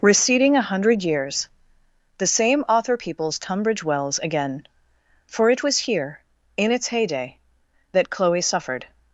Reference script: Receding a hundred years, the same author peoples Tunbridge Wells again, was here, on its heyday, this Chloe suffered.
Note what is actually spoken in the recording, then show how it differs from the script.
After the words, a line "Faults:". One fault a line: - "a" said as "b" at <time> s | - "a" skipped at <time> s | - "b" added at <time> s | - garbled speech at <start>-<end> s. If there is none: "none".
Receding a hundred years, the same author peoples Tunbridge Wells again, for it was here, in its heyday, that Chloe suffered.
Faults:
- "for it" added at 5.3 s
- "on" said as "in" at 6.6 s
- "this" said as "that" at 7.9 s